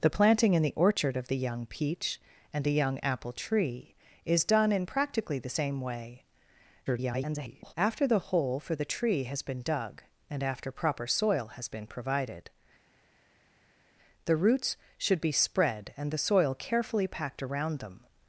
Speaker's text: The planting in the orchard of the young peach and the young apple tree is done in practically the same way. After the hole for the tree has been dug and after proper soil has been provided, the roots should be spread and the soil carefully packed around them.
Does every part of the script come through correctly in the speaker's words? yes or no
no